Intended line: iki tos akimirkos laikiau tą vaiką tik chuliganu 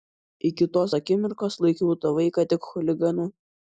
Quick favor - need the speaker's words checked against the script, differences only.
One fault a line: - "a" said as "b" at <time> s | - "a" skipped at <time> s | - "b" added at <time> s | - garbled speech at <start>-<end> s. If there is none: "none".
none